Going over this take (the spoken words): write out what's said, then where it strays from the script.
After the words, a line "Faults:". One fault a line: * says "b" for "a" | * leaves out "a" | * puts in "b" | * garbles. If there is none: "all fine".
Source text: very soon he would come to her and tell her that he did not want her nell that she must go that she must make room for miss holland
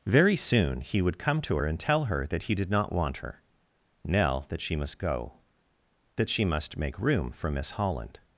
very soon he would come to her and tell her that he did not want her nell that she must go that she must make room for miss holland
Faults:
all fine